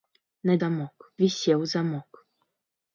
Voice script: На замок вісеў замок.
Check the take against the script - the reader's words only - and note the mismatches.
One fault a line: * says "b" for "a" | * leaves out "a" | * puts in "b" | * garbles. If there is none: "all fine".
all fine